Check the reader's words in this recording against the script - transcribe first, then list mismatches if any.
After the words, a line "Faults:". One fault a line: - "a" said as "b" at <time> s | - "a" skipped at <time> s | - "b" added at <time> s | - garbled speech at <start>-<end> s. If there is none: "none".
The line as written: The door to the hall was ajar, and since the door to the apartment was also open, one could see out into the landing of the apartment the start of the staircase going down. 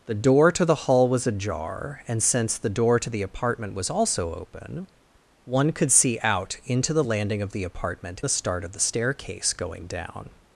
The door to the hall was ajar, and since the door to the apartment was also open, one could see out into the landing of the apartment the start of the staircase going down.
Faults:
none